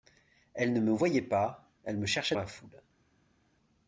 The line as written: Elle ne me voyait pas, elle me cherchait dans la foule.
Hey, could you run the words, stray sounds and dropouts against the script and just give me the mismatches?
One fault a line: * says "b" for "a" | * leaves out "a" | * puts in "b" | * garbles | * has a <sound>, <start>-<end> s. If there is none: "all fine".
* leaves out "dans"